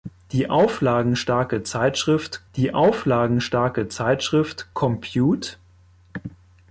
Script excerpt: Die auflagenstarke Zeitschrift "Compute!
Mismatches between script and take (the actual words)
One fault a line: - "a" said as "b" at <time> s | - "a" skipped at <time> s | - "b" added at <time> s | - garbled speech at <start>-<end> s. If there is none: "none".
- "die auflagenstarke Zeitschrift" added at 2.6 s